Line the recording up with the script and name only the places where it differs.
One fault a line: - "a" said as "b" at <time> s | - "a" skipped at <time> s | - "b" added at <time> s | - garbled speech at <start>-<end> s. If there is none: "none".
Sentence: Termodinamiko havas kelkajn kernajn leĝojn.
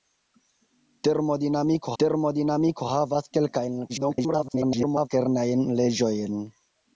- "termodinamiko" added at 2.0 s
- garbled speech at 3.9-5.1 s